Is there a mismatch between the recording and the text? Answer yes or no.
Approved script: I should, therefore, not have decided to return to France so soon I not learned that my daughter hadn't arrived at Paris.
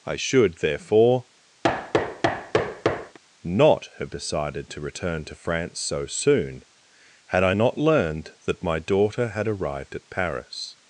yes